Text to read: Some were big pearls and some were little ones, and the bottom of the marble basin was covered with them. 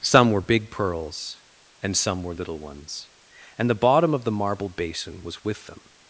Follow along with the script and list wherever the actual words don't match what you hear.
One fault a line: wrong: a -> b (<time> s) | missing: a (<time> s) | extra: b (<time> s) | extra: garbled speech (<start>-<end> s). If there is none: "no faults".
missing: covered (5.4 s)